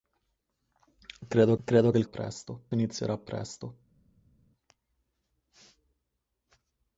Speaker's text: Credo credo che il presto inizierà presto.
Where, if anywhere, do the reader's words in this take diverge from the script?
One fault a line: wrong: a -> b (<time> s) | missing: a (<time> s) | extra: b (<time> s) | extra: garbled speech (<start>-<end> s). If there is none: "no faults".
no faults